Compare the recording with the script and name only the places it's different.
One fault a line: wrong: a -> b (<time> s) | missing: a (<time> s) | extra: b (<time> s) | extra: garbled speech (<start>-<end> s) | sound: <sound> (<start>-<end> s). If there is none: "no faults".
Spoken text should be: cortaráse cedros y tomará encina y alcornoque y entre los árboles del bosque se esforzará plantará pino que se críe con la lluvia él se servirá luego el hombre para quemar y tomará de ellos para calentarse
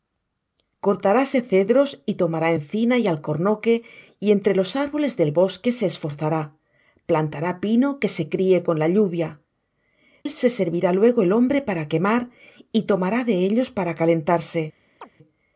sound: chirp (15.0-15.1 s)